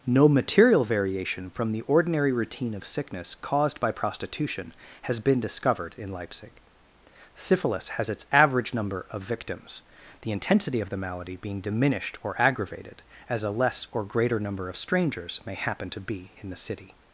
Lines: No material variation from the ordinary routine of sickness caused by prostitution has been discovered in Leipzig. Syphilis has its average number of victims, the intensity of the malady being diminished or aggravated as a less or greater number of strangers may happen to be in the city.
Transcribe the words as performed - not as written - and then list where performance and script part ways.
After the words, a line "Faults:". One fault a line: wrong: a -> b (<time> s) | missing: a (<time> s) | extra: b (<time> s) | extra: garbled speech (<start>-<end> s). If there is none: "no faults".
No material variation from the ordinary routine of sickness caused by prostitution has been discovered in Leipzig. Syphilis has its average number of victims, the intensity of the malady being diminished or aggravated as a less or greater number of strangers may happen to be in the city.
Faults:
no faults